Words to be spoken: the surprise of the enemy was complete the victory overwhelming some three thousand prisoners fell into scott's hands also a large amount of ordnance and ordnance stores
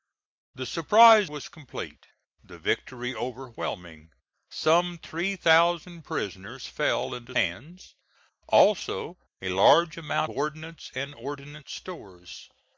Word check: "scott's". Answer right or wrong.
wrong